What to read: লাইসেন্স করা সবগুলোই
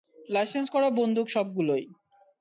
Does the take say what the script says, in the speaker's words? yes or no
no